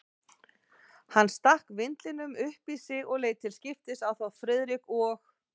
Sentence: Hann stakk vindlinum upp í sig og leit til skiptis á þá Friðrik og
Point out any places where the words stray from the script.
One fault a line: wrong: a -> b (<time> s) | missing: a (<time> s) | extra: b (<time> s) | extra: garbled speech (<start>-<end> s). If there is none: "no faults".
no faults